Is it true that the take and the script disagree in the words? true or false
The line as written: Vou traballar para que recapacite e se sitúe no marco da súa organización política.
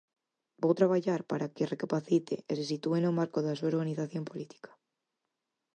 false